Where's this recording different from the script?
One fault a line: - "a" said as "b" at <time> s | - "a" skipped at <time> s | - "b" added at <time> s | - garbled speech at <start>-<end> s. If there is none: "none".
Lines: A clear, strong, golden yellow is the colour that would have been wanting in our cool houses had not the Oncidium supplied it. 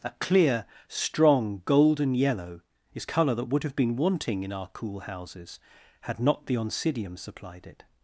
- "the" skipped at 3.0 s